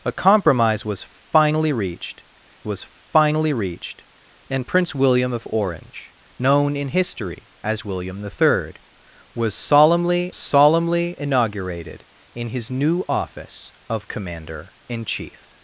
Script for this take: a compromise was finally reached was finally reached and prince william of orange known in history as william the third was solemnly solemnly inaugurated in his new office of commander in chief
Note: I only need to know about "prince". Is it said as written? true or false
true